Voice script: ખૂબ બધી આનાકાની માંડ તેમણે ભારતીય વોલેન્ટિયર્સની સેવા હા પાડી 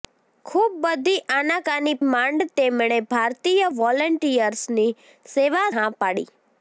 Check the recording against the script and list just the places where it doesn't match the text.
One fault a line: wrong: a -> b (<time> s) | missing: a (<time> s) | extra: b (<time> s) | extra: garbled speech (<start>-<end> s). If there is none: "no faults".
no faults